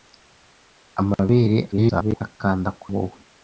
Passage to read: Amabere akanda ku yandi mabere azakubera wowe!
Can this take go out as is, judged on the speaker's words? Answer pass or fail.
fail